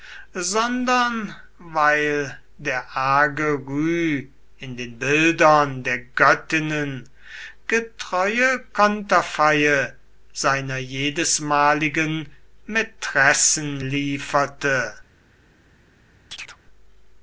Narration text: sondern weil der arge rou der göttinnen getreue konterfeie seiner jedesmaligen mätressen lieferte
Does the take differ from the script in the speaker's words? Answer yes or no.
yes